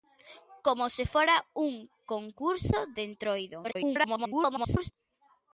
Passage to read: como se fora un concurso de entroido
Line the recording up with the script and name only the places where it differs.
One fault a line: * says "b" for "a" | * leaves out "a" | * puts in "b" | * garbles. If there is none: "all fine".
* garbles